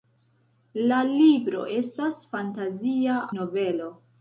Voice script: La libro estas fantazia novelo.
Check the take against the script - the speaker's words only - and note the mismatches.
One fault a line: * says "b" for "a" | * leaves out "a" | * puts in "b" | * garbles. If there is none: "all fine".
all fine